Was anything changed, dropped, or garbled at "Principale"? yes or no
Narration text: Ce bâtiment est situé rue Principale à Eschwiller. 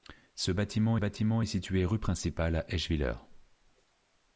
no